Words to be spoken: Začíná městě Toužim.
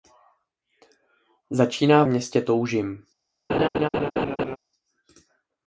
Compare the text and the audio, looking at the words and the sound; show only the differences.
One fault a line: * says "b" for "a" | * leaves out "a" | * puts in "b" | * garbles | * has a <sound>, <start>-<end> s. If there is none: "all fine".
* has a laugh, 3.5-4.6 s